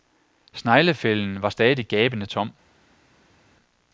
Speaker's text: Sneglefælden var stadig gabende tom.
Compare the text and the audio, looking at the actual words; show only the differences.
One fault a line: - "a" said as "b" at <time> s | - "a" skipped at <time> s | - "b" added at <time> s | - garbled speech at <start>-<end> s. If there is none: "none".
none